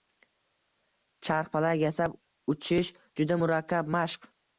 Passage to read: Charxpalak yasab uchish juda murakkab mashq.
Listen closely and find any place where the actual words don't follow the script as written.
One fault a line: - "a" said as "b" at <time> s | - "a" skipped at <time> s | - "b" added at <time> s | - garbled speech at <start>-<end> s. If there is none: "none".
none